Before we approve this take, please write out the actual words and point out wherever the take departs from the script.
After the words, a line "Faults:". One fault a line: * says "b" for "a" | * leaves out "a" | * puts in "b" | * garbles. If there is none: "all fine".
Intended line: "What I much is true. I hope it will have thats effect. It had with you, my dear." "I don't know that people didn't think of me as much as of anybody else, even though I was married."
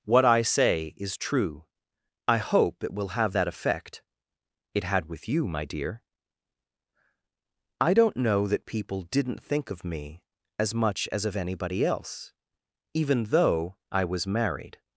"What I say is true. I hope it will have that effect. It had with you, my dear." "I don't know that people didn't think of me as much as of anybody else, even though I was married."
Faults:
* says "say" for "much"
* says "that" for "thats"